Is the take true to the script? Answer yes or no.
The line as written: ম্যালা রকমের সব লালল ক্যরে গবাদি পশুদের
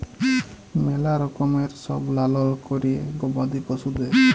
yes